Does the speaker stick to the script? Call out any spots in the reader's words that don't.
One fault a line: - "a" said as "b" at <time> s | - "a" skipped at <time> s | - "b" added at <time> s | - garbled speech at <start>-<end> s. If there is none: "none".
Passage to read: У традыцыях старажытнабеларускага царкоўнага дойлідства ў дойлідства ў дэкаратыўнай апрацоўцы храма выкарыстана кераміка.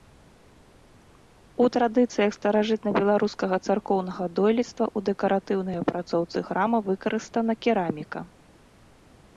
- "дойлідства ў" skipped at 5.1 s